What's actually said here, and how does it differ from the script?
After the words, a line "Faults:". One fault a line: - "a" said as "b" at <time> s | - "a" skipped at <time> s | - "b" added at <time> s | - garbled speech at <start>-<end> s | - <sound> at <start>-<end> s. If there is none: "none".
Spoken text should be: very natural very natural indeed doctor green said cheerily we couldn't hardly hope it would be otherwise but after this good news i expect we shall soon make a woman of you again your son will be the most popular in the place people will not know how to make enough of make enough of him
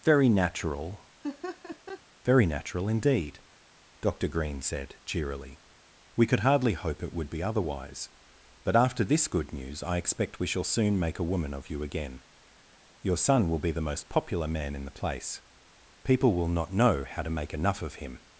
very natural very natural indeed doctor green said cheerily we could hardly hope it would be otherwise but after this good news i expect we shall soon make a woman of you again your son will be the most popular man in the place people will not know how to make enough of him
Faults:
- laugh at 1.2-2.0 s
- "couldn't" said as "could" at 6.3 s
- "man" added at 14.5 s
- "make enough of" skipped at 17.9 s